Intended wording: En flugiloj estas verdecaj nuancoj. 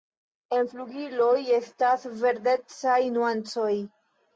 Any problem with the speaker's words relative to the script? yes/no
no